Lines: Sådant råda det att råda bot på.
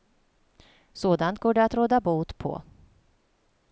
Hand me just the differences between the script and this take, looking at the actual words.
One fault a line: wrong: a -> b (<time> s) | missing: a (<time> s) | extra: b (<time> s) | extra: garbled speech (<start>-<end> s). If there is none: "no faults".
wrong: råda -> går (1.4 s)